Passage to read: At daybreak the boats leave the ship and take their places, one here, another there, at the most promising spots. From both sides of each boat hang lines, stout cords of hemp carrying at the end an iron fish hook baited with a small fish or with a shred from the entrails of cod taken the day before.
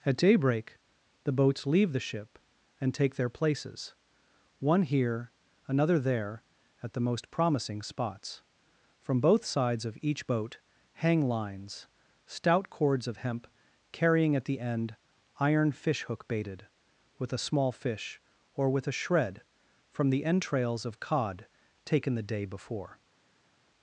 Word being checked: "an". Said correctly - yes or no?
no